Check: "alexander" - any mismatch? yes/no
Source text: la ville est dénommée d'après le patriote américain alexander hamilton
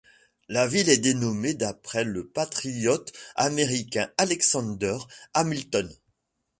no